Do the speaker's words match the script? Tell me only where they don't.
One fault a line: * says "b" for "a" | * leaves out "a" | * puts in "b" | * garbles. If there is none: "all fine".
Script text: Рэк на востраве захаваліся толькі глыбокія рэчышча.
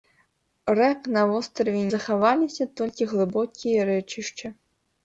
all fine